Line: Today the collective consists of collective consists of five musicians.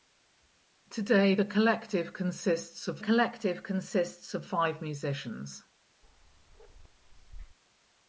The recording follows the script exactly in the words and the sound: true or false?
false